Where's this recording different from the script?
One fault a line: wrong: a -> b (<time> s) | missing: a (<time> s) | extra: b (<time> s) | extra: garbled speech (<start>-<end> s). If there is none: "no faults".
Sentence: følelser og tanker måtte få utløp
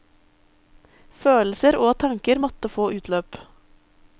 no faults